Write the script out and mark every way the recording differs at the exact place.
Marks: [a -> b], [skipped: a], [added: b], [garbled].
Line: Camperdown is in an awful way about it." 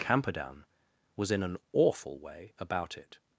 Camperdown [is -> was] in an awful way about it."